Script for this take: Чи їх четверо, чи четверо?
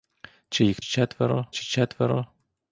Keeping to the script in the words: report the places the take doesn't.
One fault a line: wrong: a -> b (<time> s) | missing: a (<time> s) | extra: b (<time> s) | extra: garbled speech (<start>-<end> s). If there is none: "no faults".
no faults